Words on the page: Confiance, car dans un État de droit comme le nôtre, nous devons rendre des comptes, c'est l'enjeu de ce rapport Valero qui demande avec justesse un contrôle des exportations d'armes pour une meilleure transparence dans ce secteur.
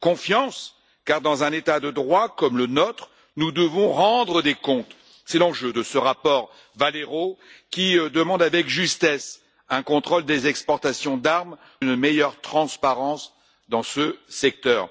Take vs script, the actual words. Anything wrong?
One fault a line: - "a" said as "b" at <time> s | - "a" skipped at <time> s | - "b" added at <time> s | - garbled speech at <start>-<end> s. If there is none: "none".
- "pour" skipped at 11.6 s